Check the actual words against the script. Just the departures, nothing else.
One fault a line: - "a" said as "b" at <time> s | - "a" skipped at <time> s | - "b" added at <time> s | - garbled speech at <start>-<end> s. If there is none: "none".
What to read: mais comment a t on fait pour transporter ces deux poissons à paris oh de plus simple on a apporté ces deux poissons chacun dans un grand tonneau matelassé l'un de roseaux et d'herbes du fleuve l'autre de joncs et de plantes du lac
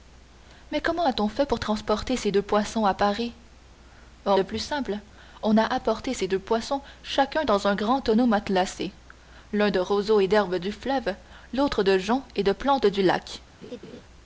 none